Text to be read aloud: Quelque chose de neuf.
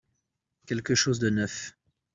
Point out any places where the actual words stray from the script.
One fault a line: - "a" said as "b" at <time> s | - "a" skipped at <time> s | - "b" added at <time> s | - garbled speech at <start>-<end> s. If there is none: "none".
none